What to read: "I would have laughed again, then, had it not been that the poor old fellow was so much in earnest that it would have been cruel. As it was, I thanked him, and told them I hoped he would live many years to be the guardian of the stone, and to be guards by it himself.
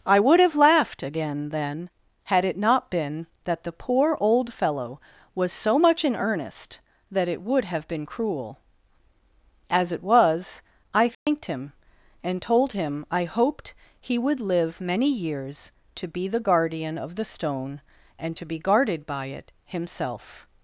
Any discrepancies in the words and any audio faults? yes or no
yes